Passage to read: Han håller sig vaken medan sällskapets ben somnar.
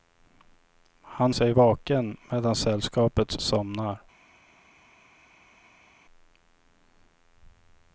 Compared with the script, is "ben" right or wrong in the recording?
wrong